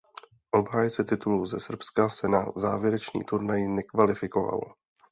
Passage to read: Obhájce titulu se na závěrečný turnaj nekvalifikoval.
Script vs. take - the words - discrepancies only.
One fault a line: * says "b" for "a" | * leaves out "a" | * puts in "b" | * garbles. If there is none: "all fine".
* puts in "ze Srbska"